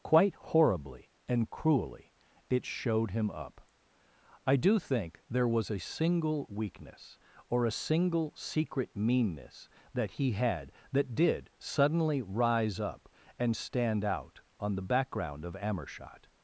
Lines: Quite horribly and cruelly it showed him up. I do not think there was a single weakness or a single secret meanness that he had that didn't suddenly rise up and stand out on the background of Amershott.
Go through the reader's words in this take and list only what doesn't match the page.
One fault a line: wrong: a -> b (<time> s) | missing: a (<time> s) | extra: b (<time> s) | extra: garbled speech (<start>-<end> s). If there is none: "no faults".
missing: not (4.8 s)
wrong: didn't -> did (11.1 s)